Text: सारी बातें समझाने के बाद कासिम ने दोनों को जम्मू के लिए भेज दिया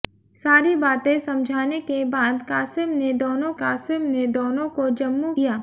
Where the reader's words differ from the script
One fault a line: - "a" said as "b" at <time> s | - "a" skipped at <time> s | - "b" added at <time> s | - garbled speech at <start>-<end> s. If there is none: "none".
- "को जम्मू के लिए भेज" said as "कासिम ने दोनों को जम्मू" at 3.6 s